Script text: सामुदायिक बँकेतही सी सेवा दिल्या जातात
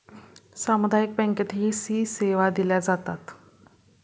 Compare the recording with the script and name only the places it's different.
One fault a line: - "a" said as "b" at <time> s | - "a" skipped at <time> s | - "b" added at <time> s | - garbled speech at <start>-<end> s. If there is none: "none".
none